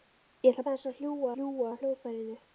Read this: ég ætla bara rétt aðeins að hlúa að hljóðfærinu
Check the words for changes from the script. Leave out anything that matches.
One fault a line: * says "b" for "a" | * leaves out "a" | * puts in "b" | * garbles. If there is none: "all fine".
* leaves out "bara rétt"
* puts in "hlúa"